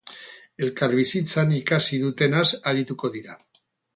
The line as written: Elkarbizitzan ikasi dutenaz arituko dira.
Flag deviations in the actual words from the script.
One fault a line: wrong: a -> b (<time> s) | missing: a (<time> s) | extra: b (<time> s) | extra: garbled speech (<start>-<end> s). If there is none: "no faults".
no faults